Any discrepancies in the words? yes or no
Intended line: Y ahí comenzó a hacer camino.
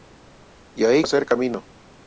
yes